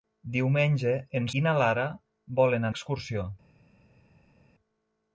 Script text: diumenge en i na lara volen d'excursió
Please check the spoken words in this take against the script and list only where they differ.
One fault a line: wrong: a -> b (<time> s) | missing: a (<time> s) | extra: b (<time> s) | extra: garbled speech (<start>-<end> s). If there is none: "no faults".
no faults